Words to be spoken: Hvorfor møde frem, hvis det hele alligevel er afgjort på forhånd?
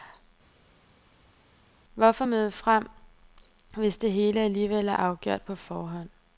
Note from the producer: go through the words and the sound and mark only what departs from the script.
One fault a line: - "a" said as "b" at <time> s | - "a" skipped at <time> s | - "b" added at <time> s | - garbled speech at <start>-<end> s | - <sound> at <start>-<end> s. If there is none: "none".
none